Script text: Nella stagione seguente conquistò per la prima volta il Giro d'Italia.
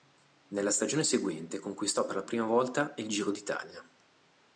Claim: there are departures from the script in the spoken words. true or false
false